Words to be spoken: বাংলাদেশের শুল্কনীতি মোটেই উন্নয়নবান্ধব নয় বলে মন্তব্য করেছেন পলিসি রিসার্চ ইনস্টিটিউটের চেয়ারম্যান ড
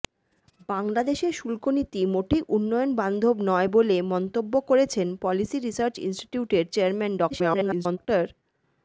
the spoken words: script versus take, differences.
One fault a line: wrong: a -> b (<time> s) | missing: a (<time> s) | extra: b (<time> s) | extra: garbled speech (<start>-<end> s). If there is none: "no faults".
extra: garbled speech (7.3-8.0 s)